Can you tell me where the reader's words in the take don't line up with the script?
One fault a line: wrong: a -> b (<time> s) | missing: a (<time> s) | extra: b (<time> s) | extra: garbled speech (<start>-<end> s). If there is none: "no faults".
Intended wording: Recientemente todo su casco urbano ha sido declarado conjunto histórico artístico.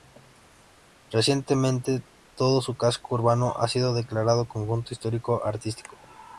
no faults